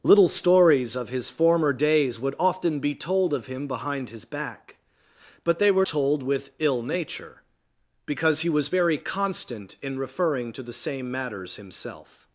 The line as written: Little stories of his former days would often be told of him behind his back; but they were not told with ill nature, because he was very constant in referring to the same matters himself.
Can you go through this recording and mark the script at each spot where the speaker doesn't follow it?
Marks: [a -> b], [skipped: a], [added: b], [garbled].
Little stories of his former days would often be told of him behind his back; but they were [skipped: not] told with ill nature, because he was very constant in referring to the same matters himself.